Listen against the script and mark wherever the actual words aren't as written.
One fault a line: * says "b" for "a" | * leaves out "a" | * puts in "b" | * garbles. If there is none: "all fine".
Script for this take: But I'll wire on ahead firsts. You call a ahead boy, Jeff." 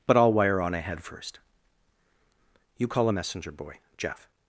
* says "first" for "firsts"
* says "messenger" for "ahead"